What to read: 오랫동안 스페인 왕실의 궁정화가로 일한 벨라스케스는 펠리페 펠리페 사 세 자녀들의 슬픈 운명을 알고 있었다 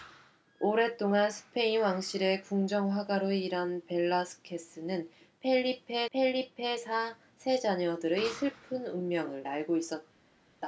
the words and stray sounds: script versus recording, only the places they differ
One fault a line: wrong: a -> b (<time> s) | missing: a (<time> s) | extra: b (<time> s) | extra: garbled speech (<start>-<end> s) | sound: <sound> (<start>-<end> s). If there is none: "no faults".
no faults